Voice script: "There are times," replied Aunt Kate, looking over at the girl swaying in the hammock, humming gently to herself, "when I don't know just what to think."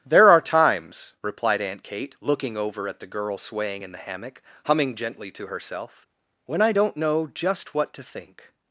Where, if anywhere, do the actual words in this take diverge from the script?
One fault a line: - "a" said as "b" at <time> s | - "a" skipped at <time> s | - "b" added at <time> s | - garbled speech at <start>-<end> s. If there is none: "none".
none